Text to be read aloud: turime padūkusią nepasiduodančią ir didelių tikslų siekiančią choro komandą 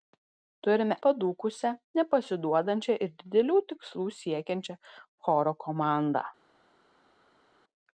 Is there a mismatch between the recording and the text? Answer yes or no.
no